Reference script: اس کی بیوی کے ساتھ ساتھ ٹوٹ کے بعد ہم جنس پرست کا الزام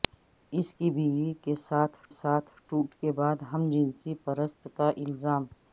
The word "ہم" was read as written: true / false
true